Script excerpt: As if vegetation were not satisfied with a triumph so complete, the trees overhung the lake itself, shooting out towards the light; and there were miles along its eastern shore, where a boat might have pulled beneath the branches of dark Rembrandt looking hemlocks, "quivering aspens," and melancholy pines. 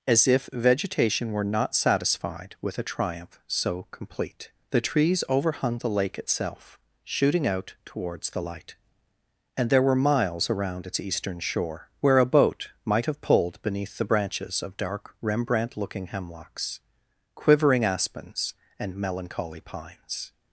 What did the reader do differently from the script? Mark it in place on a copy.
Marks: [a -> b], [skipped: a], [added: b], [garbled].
As if vegetation were not satisfied with a triumph so complete, the trees overhung the lake itself, shooting out towards the light; and there were miles [along -> around] its eastern shore, where a boat might have pulled beneath the branches of dark Rembrandt looking hemlocks, "quivering aspens," and melancholy pines.